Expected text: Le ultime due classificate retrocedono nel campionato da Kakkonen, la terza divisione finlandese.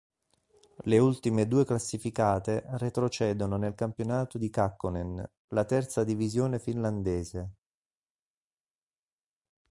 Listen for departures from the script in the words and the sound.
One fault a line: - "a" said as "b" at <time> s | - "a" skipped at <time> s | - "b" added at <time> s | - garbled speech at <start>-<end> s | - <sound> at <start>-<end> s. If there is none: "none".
- "da" said as "di" at 4.4 s